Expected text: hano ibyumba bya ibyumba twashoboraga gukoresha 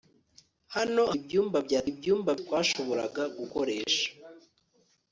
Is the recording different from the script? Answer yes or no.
no